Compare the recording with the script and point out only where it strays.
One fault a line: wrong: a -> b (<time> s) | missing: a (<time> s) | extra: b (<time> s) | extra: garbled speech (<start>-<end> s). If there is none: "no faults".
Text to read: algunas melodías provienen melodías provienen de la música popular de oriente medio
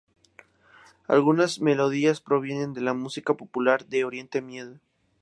missing: melodías provienen (2.7 s)